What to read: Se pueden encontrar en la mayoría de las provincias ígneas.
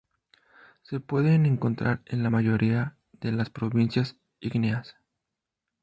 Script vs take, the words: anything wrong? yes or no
no